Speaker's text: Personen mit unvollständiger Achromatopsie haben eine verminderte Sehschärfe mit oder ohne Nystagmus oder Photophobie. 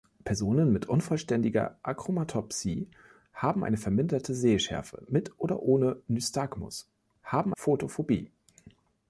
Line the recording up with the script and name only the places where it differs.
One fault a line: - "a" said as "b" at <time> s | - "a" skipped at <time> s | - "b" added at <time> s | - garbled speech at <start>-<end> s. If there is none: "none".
- "oder" said as "haben" at 7.2 s